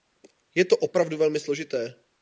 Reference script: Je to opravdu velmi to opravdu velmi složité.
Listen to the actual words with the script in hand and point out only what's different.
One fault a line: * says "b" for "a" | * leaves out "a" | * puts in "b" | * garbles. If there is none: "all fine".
* leaves out "to opravdu velmi"